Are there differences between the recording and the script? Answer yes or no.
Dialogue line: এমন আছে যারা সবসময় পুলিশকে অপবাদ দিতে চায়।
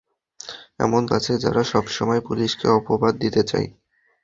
no